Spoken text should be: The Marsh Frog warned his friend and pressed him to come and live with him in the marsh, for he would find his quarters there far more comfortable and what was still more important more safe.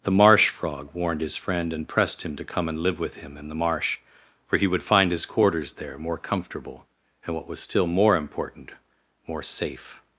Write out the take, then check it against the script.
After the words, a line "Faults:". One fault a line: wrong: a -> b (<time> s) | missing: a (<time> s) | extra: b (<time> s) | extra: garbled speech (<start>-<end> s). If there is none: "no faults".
The Marsh Frog warned his friend and pressed him to come and live with him in the marsh, for he would find his quarters there more comfortable and what was still more important more safe.
Faults:
missing: far (6.0 s)